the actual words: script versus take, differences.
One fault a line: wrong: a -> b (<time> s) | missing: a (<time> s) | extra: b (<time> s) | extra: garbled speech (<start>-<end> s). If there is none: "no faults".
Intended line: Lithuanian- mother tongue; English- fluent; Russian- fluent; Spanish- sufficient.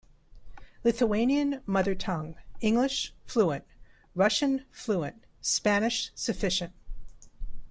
no faults